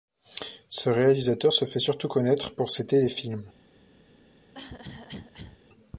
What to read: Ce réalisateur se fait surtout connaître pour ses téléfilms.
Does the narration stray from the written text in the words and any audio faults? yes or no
yes